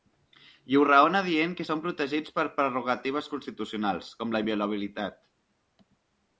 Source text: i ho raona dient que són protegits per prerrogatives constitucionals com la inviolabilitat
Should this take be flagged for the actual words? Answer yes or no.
no